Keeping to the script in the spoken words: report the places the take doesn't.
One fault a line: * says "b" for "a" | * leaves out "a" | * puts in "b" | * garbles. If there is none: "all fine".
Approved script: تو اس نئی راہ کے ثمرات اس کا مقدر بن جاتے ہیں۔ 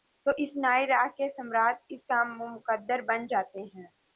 all fine